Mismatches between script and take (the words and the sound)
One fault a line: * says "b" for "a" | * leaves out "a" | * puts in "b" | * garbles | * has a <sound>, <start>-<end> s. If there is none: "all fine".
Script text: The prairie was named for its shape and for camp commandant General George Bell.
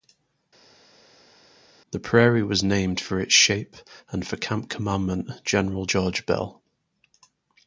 all fine